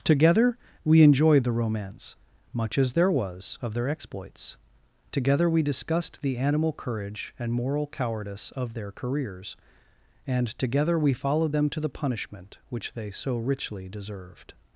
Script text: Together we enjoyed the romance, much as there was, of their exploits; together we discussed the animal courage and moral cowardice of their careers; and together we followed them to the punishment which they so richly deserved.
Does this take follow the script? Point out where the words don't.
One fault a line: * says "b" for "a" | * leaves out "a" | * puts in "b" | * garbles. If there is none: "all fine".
all fine